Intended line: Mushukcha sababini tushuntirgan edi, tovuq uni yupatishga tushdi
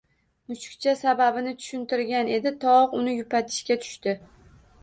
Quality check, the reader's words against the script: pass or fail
pass